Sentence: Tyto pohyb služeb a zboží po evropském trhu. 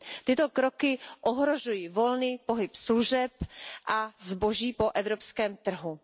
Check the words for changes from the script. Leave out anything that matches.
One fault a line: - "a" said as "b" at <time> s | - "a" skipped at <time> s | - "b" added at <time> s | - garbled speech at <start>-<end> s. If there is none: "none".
- "kroky ohrožují volný" added at 0.5 s